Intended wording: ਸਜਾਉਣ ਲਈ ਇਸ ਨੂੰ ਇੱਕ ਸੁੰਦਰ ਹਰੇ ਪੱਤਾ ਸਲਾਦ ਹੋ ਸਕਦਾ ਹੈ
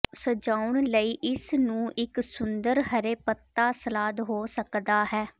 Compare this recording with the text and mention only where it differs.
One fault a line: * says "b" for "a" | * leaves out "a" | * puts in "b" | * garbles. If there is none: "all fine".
all fine